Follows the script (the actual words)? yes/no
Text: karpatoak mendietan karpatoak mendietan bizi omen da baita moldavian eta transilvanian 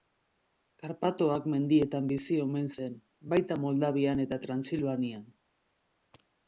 no